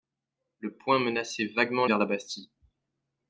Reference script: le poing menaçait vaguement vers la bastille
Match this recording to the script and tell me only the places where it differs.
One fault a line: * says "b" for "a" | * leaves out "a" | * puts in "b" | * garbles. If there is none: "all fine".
all fine